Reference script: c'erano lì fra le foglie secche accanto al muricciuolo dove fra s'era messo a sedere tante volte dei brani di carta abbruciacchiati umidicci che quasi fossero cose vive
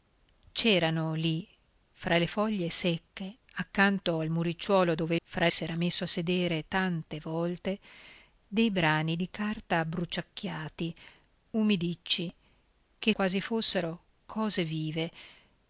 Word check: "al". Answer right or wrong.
right